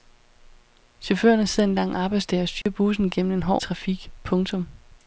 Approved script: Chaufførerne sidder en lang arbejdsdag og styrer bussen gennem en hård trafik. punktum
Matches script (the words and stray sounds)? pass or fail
fail